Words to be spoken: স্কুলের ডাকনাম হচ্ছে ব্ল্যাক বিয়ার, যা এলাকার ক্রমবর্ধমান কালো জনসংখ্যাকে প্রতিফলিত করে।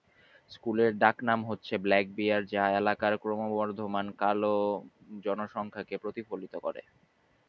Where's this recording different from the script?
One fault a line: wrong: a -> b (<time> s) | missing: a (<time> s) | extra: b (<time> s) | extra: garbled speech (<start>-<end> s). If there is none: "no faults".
no faults